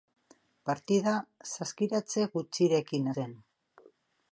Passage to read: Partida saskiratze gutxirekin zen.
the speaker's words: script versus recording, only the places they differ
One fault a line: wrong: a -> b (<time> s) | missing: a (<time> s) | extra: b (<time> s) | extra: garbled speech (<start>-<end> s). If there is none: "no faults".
no faults